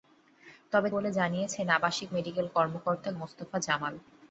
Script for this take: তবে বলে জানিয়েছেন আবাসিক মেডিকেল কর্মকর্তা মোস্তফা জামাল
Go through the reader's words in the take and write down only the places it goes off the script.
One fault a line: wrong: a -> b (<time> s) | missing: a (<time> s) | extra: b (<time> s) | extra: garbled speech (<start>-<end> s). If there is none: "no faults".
no faults